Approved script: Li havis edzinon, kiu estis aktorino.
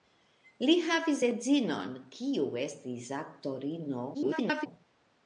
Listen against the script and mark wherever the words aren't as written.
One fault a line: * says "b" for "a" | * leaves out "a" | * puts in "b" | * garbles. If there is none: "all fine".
* garbles